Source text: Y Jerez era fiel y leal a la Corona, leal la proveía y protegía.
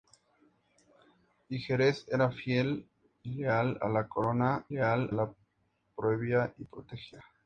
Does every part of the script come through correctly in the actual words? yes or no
yes